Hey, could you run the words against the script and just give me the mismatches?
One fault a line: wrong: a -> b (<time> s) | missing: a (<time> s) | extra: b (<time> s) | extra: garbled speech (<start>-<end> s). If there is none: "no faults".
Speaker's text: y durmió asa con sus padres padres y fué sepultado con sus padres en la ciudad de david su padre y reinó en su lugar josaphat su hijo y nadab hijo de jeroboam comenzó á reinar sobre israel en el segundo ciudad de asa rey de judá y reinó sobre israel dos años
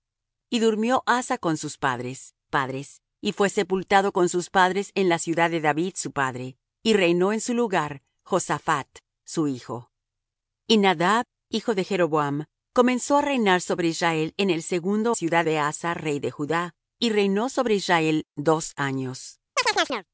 no faults